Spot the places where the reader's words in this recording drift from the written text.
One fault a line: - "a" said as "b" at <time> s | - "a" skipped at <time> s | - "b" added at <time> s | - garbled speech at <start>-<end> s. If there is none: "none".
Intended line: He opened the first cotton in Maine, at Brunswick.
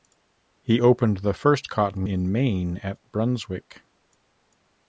none